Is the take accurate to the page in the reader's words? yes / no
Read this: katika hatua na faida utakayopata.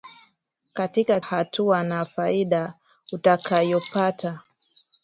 yes